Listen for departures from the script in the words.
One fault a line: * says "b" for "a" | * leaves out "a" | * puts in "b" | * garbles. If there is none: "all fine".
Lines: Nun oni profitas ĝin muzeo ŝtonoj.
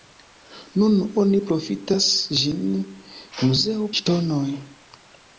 all fine